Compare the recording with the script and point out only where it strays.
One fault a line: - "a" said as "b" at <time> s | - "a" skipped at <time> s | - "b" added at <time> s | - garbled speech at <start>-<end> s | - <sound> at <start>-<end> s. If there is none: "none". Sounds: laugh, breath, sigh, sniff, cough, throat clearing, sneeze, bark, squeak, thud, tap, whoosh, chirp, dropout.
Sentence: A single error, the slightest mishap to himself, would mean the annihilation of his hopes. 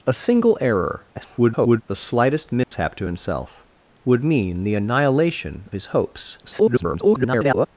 - garbled speech at 1.2-1.8 s
- dropout at 2.6-2.7 s
- "of" skipped at 5.7 s
- garbled speech at 6.4-7.7 s